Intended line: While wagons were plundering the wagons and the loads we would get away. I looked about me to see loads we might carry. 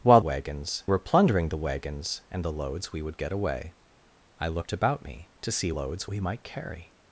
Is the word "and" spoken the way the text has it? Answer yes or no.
yes